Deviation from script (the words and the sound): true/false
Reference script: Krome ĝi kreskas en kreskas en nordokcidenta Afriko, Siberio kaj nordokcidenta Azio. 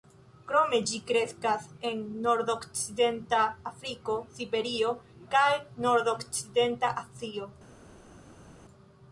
true